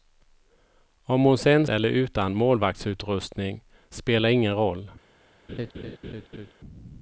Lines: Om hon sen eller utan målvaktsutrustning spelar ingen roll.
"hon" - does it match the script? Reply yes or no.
yes